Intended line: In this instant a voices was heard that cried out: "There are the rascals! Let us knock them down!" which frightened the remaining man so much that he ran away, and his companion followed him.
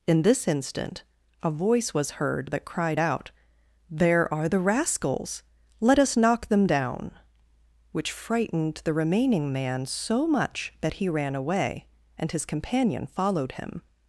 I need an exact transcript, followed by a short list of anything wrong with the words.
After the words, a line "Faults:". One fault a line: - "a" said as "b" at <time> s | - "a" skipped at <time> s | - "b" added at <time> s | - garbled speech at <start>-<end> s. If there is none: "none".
In this instant a voice was heard that cried out: "There are the rascals! Let us knock them down!" which frightened the remaining man so much that he ran away, and his companion followed him.
Faults:
- "voices" said as "voice" at 1.5 s